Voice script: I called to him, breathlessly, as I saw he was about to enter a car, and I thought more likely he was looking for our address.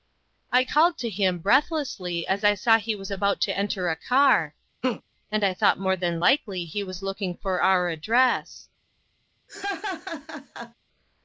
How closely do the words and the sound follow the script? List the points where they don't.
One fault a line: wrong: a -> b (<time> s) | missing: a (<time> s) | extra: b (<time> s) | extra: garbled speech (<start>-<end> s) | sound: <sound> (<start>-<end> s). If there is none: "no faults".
sound: laugh (4.8-5.0 s)
extra: than (6.0 s)
sound: laugh (9.5-10.7 s)